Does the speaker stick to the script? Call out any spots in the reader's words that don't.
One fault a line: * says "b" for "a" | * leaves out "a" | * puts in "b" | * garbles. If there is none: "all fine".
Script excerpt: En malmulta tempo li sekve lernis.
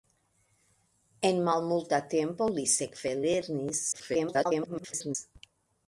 * garbles